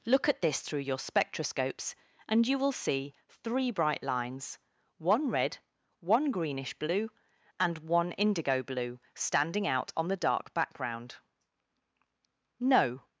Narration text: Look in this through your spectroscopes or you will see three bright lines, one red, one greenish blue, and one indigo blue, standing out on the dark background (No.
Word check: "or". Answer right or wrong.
wrong